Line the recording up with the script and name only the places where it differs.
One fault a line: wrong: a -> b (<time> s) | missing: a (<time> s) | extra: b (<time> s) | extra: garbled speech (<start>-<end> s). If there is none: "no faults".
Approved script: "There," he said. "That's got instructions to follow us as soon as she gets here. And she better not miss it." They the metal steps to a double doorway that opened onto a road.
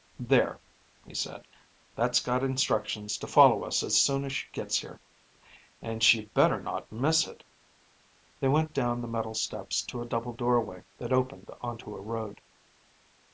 extra: went down (8.5 s)